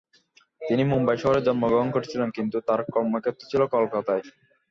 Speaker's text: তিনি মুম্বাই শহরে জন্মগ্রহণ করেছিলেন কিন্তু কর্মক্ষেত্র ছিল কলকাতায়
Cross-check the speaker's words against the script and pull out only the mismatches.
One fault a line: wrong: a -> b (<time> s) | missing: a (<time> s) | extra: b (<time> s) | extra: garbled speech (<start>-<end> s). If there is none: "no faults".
extra: তার (2.7 s)